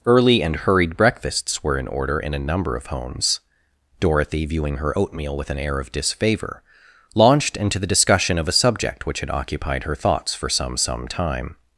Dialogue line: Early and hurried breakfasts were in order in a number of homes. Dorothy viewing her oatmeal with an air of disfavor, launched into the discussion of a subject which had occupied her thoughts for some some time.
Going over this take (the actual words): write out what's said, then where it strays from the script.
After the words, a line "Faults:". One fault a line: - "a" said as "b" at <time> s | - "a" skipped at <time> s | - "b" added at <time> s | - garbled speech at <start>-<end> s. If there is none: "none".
Early and hurried breakfasts were in order in a number of homes. Dorothy viewing her oatmeal with an air of disfavor, launched into the discussion of a subject which had occupied her thoughts for some some time.
Faults:
none